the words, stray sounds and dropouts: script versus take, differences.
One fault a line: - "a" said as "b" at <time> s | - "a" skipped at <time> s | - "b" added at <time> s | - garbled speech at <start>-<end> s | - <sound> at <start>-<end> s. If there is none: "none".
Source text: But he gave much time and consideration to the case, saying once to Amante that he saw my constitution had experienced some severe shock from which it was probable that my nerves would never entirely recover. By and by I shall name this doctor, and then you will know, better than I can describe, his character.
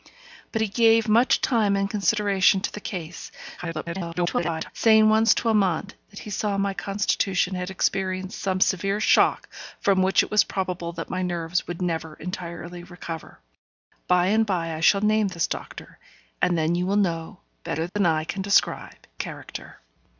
- garbled speech at 3.6-4.7 s
- dropout at 17.9-18.0 s
- "his" skipped at 19.1 s